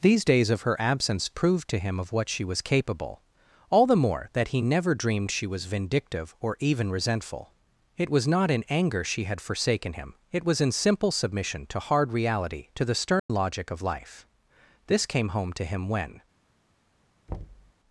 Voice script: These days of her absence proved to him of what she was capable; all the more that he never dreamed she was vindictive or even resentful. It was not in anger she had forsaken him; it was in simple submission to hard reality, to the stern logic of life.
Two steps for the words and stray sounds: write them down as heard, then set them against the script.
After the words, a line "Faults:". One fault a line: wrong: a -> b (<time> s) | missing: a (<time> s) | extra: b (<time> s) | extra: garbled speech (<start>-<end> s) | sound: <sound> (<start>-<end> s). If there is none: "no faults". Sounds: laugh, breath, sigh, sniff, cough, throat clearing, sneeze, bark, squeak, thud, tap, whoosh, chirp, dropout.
These days of her absence proved to him of what she was capable; all the more that he never dreamed she was vindictive or even resentful. It was not in anger she had forsaken him; it was in simple submission to hard reality, to the stern logic of life. This came home to him when
Faults:
sound: dropout (13.2-13.3 s)
extra: This came home to him when (14.9 s)
sound: thud (17.3-17.7 s)